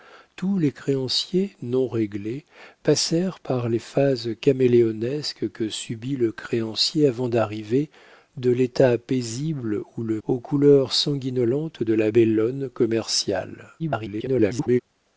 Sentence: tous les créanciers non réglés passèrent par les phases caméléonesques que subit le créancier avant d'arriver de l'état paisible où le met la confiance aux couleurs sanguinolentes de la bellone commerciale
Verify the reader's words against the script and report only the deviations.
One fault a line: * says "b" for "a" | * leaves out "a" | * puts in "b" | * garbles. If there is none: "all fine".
* leaves out "met la confiance"
* garbles